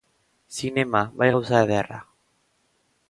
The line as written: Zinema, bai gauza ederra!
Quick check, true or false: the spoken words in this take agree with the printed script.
true